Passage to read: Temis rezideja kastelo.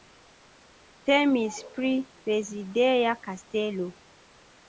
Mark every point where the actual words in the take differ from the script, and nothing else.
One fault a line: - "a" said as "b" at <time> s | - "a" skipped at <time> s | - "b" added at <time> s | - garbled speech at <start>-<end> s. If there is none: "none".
- "pri" added at 1.8 s